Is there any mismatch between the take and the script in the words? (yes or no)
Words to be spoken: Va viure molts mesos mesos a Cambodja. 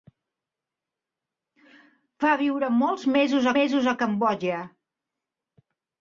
no